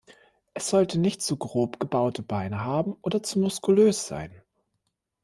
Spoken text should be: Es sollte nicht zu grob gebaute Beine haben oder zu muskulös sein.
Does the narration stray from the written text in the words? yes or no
no